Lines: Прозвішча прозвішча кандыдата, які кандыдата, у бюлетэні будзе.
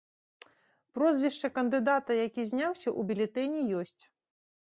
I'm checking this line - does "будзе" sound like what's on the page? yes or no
no